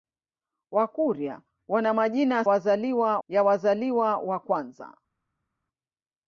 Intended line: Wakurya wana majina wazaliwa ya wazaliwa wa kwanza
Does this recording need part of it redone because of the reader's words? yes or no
no